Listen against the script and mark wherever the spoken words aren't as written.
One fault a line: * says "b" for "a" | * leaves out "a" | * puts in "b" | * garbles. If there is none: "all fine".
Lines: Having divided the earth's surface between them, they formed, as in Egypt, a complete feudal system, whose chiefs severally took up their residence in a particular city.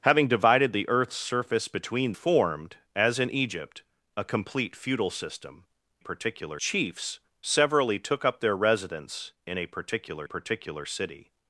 * leaves out "them they"
* says "particular" for "whose"
* puts in "particular"